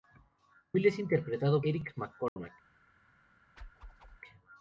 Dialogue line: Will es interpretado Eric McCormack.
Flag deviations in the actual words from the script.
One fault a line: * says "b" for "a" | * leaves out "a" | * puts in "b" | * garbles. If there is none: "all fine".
all fine